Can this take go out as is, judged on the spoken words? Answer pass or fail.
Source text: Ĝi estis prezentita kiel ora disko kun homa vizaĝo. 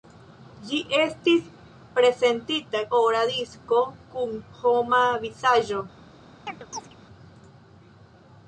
fail